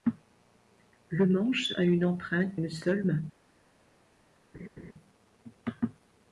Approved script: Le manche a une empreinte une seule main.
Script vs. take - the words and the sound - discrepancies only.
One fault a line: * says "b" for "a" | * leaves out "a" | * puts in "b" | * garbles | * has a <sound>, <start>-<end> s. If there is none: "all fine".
* has a laugh, 4.5-4.9 s